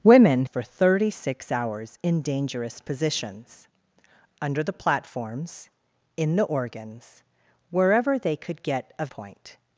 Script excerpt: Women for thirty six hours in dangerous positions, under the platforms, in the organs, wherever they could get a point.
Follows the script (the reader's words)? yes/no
yes